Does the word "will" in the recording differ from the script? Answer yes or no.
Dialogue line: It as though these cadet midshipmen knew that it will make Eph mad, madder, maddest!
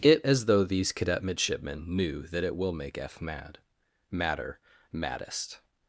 no